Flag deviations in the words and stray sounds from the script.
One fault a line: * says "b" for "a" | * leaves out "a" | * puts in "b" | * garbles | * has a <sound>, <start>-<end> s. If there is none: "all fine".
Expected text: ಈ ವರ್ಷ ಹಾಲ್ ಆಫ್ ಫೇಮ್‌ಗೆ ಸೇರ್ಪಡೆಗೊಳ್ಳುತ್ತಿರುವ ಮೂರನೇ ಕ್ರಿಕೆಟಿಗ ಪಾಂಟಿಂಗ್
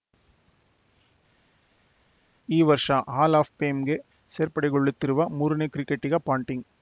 all fine